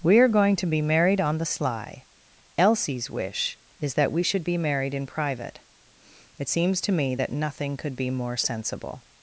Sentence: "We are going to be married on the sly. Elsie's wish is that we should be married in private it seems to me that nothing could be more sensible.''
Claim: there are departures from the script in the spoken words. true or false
false